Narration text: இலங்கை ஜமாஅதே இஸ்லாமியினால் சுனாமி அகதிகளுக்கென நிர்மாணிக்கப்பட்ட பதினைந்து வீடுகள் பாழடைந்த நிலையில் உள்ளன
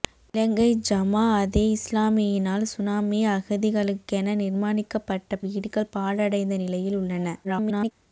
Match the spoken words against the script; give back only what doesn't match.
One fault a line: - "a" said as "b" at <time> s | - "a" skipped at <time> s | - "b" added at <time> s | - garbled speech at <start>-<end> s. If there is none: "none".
- "பதினைந்து" skipped at 5.4 s
- garbled speech at 7.4-7.9 s